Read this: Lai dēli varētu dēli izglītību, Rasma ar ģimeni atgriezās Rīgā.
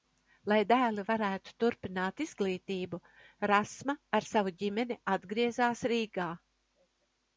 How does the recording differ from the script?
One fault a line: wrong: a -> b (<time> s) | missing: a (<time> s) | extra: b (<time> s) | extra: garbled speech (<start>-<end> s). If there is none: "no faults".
wrong: dēli -> turpināt (1.6 s)
extra: savu (4.3 s)